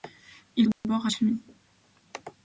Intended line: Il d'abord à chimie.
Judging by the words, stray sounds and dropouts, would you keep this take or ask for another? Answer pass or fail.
fail